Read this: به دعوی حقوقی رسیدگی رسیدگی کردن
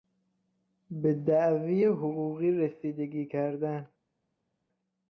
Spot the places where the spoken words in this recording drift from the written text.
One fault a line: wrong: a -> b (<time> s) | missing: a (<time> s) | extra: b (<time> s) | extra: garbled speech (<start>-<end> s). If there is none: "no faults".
missing: رسیدگی (3.3 s)